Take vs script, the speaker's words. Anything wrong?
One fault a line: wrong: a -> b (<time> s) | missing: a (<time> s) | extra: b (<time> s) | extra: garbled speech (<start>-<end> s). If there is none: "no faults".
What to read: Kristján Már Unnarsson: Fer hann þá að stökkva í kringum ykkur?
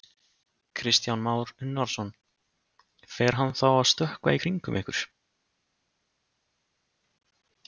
no faults